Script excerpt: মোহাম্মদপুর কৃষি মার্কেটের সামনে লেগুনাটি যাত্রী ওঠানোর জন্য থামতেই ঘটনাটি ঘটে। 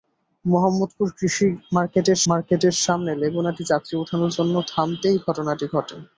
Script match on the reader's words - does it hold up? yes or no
no